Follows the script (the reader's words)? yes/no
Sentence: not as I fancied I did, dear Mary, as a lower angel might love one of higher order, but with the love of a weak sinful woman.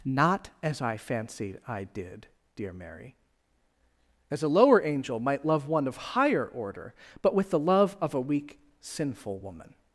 yes